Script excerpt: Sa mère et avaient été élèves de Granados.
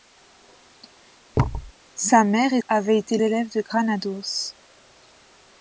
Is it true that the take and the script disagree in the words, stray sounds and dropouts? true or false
true